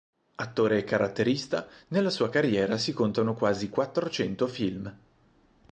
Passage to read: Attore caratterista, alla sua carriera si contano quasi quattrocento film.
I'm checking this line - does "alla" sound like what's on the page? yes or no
no